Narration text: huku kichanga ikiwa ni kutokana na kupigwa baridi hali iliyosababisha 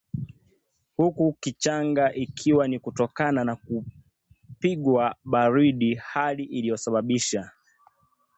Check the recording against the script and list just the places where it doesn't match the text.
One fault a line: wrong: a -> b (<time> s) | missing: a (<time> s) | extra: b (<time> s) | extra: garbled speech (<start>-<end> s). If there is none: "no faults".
no faults